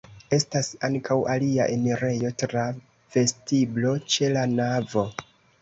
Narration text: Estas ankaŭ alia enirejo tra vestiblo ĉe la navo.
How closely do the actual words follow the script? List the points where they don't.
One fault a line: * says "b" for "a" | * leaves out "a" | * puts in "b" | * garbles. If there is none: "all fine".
all fine